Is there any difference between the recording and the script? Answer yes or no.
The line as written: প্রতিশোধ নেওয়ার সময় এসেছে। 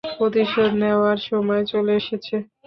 yes